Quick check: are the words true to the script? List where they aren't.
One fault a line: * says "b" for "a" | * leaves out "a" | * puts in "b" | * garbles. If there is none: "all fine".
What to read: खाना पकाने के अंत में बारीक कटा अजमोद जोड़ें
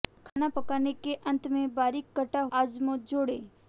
all fine